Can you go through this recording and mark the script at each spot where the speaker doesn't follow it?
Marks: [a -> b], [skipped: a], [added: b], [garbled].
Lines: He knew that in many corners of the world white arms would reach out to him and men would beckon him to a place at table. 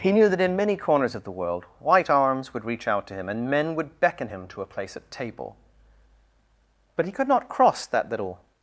He knew that in many corners of the world white arms would reach out to him and men would beckon him to a place at table. [added: But he could not cross that little]